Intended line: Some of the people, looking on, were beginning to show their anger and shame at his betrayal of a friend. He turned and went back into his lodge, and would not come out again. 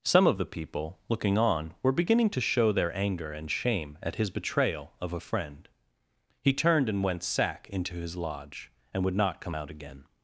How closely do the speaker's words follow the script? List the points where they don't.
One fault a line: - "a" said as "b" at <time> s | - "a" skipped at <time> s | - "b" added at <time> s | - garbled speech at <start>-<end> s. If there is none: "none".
- "back" said as "sack" at 7.2 s